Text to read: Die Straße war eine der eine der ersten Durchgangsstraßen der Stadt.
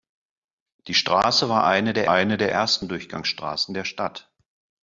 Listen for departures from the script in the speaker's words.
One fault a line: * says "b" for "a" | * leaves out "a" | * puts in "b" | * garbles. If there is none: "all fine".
all fine